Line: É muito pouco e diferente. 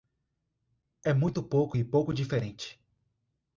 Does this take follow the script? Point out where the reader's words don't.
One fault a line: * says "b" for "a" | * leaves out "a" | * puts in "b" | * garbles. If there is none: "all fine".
* puts in "pouco"